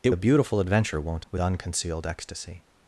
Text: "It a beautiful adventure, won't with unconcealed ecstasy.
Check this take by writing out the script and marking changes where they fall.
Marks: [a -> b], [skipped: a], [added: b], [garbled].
"It a beautiful adventure, won't with unconcealed ecstasy.